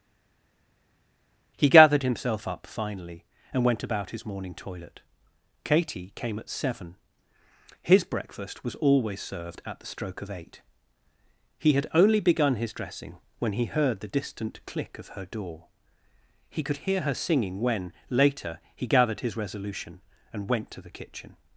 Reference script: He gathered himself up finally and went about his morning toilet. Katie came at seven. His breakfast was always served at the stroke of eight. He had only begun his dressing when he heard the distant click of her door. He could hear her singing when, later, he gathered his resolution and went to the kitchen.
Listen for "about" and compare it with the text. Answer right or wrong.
right